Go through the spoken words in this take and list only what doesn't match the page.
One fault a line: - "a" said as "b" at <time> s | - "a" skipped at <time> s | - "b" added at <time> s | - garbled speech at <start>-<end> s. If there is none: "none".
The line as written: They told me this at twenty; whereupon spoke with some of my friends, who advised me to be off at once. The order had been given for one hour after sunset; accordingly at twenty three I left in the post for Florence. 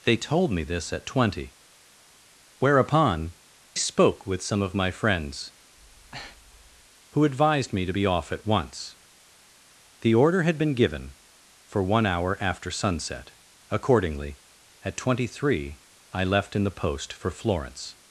none